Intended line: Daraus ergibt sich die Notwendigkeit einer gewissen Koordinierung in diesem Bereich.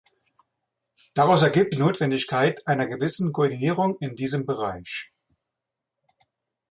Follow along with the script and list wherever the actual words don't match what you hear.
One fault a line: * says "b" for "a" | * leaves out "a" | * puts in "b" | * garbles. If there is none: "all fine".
* leaves out "sich"